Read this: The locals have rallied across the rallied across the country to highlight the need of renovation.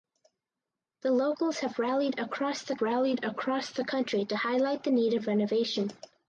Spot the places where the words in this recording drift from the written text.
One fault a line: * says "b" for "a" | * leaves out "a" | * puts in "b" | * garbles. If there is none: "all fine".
all fine